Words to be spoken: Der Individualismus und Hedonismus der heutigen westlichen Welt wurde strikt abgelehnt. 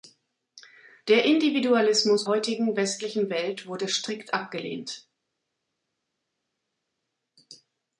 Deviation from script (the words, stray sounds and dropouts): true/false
true